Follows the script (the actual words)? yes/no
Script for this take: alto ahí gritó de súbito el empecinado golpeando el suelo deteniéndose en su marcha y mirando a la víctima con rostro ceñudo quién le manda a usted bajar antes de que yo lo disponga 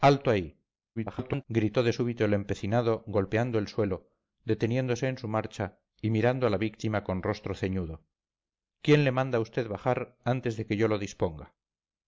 no